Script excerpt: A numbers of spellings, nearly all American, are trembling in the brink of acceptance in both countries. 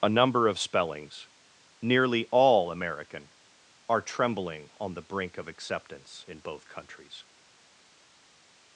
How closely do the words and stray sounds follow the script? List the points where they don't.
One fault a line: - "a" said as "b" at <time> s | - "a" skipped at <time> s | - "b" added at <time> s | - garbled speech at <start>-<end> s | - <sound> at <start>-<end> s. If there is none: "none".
- "numbers" said as "number" at 0.1 s
- "in" said as "on" at 4.8 s